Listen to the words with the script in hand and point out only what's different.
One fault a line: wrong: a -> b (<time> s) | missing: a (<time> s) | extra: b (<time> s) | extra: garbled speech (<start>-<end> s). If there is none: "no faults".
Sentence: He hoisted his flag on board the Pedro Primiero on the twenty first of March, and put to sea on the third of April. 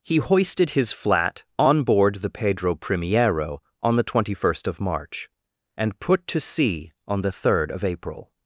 wrong: flag -> flat (0.9 s)